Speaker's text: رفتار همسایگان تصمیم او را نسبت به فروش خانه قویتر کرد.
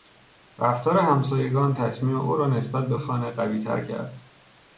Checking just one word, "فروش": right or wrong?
wrong